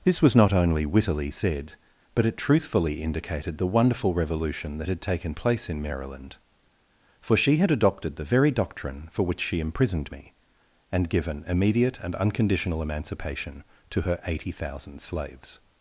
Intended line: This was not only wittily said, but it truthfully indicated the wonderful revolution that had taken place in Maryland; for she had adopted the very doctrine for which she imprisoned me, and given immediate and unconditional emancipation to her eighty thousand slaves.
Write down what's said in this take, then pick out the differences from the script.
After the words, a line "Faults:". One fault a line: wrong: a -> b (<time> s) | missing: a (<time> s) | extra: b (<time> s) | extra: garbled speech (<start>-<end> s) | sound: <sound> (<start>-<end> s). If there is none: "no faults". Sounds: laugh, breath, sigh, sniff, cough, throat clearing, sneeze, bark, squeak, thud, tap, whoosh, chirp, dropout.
This was not only wittily said, but it truthfully indicated the wonderful revolution that had taken place in Maryland; for she had adopted the very doctrine for which she imprisoned me, and given immediate and unconditional emancipation to her eighty thousand slaves.
Faults:
no faults